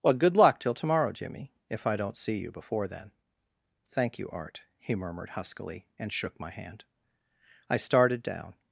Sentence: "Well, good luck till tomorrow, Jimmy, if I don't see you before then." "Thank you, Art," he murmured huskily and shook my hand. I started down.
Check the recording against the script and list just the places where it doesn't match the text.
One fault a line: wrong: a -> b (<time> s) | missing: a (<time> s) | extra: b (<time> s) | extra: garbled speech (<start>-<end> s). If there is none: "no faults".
no faults